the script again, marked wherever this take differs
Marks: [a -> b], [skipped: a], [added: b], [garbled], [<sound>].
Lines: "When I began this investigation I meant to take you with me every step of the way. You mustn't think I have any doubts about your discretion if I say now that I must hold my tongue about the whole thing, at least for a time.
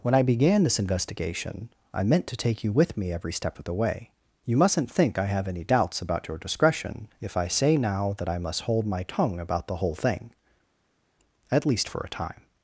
"When I began this investigation I meant to take you with me every step of the way. You mustn't think I have any doubts about your discretion if I say now that I must hold my tongue about the whole thing, at least for a time.